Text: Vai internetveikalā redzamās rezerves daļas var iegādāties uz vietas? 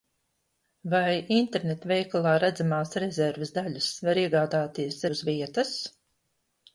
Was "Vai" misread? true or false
false